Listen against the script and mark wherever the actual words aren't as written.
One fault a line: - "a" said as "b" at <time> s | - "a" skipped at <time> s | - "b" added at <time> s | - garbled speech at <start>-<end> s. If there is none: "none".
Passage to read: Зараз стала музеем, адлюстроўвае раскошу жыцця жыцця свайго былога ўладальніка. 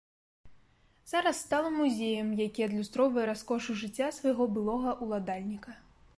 - "які" added at 2.5 s
- "жыцця" skipped at 4.1 s